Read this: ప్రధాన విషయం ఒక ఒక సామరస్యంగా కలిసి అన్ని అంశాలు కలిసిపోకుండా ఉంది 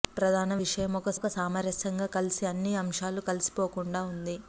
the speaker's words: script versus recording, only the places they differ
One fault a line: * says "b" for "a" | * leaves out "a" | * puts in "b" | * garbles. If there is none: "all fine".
all fine